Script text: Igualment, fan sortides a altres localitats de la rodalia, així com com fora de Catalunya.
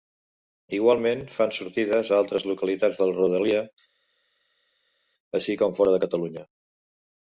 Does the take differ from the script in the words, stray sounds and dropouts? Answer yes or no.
yes